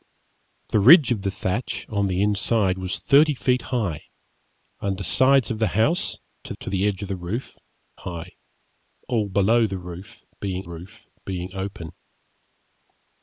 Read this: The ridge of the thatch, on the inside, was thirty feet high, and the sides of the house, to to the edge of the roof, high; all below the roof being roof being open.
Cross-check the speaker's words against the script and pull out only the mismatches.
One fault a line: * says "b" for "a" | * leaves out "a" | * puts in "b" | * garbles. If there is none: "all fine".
all fine